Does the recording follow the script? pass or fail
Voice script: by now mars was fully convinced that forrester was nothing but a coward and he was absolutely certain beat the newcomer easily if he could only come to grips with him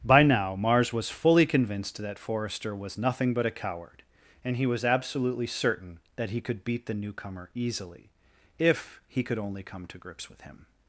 fail